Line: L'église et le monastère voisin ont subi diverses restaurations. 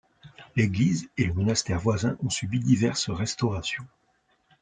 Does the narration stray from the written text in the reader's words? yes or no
no